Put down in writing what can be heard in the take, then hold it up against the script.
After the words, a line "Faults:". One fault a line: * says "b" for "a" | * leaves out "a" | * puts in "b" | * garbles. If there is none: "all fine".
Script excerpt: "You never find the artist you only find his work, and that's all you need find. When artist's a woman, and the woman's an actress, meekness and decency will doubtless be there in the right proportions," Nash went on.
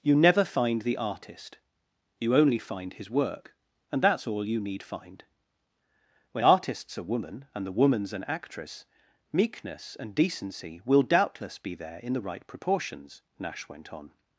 "You never find the artist you only find his work, and that's all you need find. When artist's a woman, and the woman's an actress, meekness and decency will doubtless be there in the right proportions," Nash went on.
Faults:
all fine